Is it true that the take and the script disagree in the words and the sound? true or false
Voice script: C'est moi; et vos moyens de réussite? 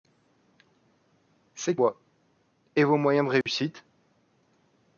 true